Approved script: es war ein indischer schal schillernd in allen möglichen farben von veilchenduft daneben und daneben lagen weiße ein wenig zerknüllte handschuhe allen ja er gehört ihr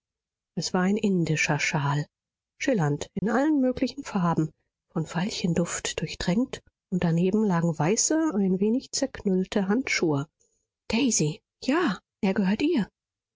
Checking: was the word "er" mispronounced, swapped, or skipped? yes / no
no